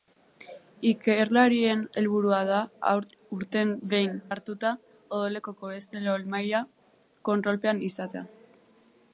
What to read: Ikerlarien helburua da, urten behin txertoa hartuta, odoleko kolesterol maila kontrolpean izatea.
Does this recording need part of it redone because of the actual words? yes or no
yes